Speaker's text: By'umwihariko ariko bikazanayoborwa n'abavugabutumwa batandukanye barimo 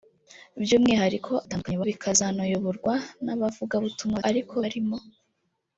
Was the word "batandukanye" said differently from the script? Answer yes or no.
yes